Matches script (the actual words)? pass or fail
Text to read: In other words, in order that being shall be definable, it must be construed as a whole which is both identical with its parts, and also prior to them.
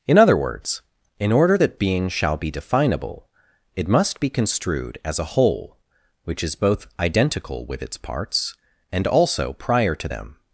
pass